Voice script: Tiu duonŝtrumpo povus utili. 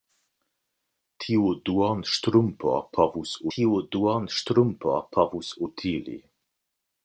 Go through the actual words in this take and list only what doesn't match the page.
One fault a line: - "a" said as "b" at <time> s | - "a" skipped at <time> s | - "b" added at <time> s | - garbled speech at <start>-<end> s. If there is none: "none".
- "tiu duonŝtrumpo povus" added at 3.5 s